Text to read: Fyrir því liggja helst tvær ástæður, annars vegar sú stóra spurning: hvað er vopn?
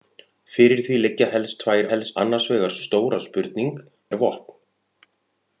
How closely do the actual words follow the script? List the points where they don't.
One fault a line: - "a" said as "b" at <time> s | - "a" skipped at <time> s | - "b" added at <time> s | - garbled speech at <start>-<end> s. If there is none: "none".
- "ástæður" said as "helst" at 1.9 s
- "sú" skipped at 2.7 s
- "hvað" skipped at 3.7 s